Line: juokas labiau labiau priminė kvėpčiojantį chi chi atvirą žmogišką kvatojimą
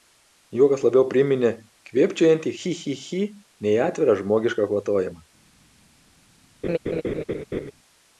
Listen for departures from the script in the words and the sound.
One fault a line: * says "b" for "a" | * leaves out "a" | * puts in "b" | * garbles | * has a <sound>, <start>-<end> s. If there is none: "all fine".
* leaves out "labiau"
* puts in "chi nei"
* has a laugh, 6.6-7.7 s